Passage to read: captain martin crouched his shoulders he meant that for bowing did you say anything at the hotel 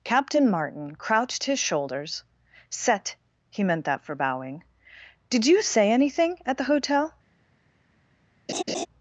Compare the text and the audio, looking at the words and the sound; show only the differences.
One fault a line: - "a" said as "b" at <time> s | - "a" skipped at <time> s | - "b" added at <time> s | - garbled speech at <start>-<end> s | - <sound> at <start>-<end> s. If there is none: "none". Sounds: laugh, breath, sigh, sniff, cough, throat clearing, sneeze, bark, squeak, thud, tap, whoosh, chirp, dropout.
- "set" added at 2.7 s
- laugh at 8.5-8.9 s